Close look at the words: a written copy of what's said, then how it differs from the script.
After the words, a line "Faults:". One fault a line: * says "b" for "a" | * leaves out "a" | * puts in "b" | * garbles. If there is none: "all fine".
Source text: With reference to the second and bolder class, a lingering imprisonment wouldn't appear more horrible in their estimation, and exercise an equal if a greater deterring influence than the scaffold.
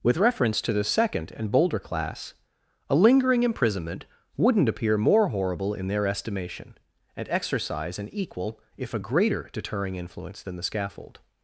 With reference to the second and bolder class, a lingering imprisonment wouldn't appear more horrible in their estimation, and exercise an equal if a greater deterring influence than the scaffold.
Faults:
all fine